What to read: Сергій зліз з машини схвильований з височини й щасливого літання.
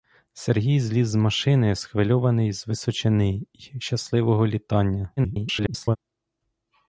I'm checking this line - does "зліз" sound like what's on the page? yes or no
yes